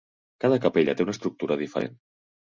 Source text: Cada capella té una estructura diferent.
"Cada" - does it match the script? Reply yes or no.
yes